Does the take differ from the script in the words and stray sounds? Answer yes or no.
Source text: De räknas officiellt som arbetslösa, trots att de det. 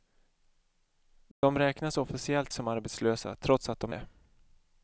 yes